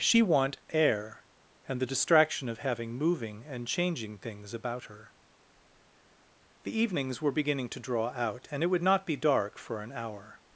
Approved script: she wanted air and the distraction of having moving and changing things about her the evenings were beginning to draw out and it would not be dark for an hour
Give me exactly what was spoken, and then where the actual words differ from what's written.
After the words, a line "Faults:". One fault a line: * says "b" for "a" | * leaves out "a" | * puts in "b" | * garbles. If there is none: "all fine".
she want air and the distraction of having moving and changing things about her the evenings were beginning to draw out and it would not be dark for an hour
Faults:
* says "want" for "wanted"